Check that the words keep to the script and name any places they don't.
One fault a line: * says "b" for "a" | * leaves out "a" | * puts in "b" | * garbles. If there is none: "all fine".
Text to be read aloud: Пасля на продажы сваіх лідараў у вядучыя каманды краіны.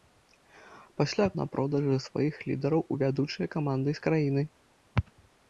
all fine